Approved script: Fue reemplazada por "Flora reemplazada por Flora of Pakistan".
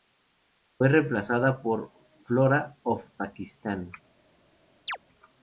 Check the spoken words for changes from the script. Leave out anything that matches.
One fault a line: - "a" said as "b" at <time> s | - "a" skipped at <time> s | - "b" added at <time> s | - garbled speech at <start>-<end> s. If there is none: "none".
- "reemplazada por Flora" skipped at 2.8 s